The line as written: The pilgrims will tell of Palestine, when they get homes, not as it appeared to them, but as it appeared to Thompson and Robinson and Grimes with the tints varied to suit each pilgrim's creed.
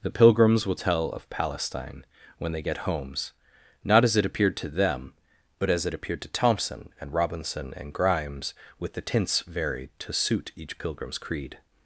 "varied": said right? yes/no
yes